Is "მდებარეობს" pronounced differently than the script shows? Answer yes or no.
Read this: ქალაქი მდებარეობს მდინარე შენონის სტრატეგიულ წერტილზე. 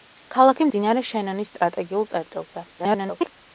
yes